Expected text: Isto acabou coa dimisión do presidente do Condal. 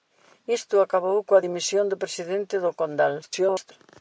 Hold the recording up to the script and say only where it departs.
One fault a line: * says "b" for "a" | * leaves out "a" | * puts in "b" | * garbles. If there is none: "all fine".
* garbles